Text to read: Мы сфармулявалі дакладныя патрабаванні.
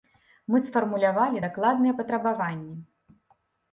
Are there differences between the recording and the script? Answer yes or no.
no